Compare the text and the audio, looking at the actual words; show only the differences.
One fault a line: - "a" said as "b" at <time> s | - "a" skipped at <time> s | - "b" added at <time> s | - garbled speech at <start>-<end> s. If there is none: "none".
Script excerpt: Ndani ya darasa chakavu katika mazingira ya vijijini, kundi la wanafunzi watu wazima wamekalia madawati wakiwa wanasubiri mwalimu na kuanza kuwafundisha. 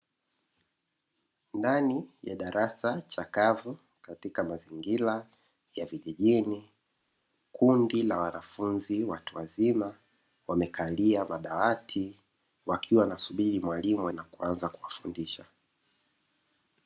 none